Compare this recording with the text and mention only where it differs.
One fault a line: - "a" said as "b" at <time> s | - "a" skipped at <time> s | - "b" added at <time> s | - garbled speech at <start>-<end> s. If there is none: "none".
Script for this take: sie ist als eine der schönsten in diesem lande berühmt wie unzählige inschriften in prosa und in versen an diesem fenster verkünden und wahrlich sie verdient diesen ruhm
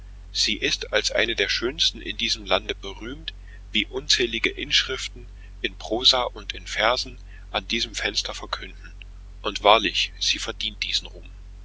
none